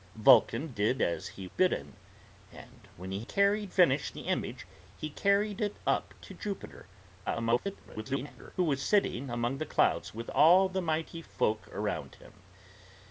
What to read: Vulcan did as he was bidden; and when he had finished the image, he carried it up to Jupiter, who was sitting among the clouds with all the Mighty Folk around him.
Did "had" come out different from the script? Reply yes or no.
yes